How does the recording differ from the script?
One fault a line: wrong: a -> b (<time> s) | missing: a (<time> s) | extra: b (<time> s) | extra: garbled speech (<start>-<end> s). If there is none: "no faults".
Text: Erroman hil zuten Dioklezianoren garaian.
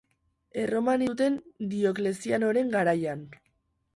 missing: hil (1.0 s)